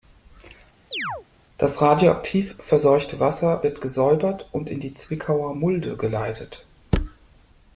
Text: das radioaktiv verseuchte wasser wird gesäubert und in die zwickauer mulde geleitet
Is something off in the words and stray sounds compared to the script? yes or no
yes